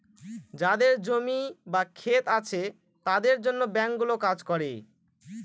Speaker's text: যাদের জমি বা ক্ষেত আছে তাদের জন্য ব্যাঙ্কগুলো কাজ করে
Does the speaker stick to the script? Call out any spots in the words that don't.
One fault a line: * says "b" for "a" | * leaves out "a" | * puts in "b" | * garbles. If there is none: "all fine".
all fine